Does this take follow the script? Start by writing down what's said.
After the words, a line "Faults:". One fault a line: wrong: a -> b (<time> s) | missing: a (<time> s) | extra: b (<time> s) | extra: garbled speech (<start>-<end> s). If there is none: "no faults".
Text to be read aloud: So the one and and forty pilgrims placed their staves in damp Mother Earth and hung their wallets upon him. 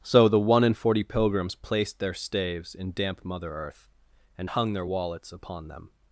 So the one and forty pilgrims placed their staves in damp Mother Earth and hung their wallets upon them.
Faults:
missing: and (0.8 s)
wrong: him -> them (5.7 s)